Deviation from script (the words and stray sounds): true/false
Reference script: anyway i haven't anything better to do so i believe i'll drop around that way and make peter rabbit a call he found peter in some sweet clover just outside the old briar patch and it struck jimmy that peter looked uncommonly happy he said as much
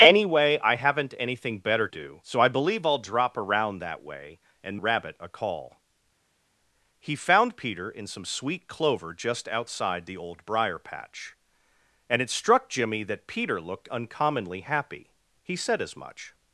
true